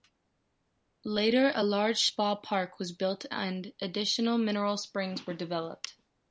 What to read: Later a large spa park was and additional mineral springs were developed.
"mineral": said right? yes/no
yes